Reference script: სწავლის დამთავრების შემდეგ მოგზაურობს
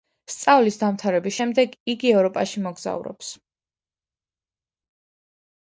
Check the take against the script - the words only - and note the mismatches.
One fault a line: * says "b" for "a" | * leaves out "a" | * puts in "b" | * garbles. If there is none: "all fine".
* puts in "იგი ევროპაში"